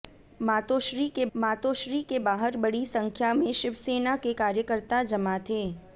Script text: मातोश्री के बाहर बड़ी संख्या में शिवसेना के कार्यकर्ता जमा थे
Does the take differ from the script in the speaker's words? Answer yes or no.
yes